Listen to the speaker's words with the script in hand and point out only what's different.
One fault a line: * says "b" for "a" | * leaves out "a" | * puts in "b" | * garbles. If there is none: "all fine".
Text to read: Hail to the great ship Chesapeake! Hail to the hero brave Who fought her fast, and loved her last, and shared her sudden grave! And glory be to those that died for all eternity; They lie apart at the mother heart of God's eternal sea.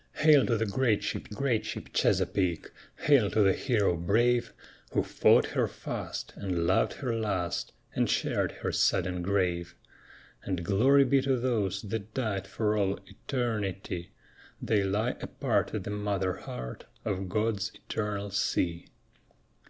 * puts in "great ship"